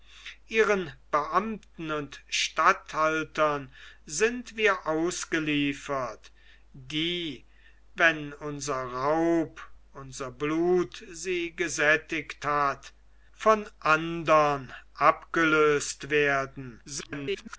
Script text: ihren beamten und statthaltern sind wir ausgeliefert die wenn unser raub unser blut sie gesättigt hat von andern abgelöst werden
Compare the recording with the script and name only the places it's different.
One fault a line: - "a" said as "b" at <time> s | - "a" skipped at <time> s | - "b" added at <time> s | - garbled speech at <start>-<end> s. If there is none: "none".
- garbled speech at 16.8-17.6 s